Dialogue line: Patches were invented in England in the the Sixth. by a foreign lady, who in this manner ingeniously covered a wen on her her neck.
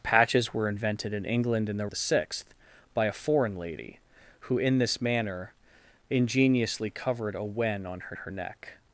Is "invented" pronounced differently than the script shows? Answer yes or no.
no